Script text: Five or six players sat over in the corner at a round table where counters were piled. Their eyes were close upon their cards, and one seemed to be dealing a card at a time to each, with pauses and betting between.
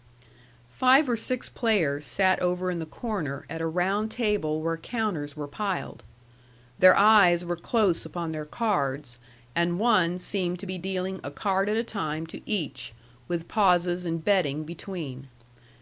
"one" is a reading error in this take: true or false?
false